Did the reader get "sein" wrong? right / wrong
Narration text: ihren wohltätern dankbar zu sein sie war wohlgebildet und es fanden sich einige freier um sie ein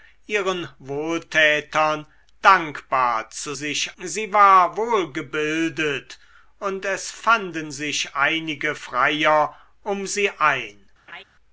wrong